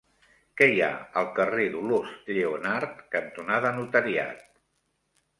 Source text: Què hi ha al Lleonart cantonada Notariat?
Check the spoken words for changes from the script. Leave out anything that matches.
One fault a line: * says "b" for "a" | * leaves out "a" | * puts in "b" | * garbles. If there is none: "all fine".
* puts in "carrer Dolors"